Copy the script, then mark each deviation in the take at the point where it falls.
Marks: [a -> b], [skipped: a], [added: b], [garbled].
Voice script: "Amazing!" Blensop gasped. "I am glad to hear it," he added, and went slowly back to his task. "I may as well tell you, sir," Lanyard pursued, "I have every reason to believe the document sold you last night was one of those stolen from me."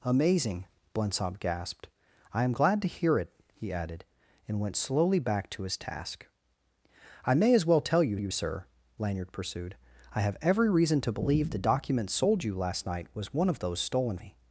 "Amazing!" Blensop gasped. "I am glad to hear it," he added, and went slowly back to his task. "I may as well tell you, [added: you] sir," Lanyard pursued, "I have every reason to believe the document sold you last night was one of those stolen [skipped: from] me."